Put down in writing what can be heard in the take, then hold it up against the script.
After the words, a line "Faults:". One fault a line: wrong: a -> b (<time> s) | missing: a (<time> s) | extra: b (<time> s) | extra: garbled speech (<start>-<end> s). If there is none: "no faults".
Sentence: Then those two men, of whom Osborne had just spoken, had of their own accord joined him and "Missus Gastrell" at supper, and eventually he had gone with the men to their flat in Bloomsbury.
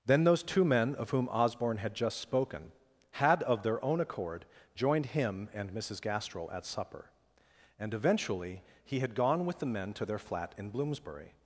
Then those two men, of whom Osborne had just spoken, had of their own accord joined him and "Missus Gastrell" at supper, and eventually he had gone with the men to their flat in Bloomsbury.
Faults:
no faults